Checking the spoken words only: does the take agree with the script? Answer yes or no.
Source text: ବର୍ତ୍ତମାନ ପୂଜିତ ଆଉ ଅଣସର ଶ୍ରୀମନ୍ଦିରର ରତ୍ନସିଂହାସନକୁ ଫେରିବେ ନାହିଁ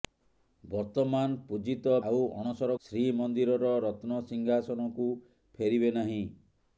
yes